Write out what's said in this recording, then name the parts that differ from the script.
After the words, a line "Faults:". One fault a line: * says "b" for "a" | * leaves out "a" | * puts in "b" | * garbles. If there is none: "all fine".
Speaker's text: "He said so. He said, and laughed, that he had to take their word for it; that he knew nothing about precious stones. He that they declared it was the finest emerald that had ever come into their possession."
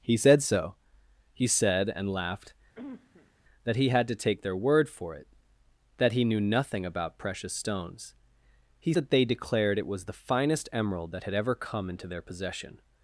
"He said so. He said, and laughed, that he had to take their word for it; that he knew nothing about precious stones. He that they declared it was the finest emerald that had ever come into their possession."
Faults:
all fine